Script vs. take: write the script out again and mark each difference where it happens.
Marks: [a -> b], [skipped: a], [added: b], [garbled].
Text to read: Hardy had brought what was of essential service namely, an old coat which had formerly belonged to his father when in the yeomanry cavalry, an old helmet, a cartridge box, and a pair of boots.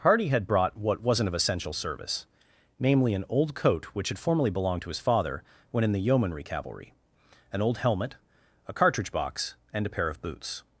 Hardy had brought what [was -> wasn't] of essential service namely, an old coat which had formerly belonged to his father when in the yeomanry cavalry, an old helmet, a cartridge box, and a pair of boots.